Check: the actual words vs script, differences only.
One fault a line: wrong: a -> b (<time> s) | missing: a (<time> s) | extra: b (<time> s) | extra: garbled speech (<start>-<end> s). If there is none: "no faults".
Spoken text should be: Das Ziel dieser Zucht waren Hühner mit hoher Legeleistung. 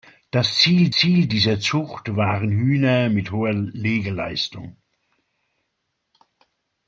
extra: Ziel (0.9 s)